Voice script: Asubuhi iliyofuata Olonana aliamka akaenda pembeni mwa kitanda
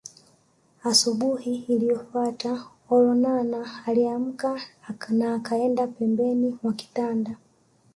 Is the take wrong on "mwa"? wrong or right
right